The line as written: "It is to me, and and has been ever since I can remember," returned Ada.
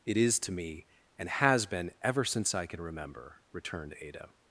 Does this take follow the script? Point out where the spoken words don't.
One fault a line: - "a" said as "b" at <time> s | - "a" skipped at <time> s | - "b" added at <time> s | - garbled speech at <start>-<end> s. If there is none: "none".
- "and" skipped at 1.3 s